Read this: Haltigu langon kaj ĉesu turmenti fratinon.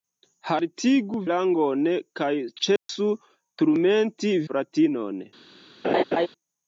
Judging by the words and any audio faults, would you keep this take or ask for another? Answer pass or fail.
fail